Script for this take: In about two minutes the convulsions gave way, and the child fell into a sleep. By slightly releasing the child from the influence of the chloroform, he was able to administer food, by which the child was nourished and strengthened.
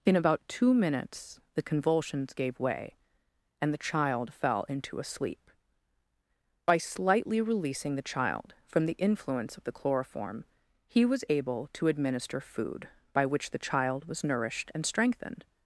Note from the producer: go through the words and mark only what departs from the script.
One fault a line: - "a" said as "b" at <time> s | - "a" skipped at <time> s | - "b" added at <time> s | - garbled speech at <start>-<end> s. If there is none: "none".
none